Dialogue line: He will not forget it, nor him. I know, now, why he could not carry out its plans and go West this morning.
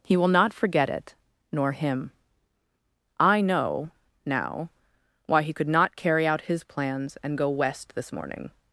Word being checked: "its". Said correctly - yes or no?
no